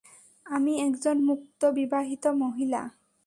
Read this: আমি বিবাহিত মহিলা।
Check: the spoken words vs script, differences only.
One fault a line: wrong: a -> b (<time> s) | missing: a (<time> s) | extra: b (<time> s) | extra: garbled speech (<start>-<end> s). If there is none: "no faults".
extra: একজন মুক্ত (0.8 s)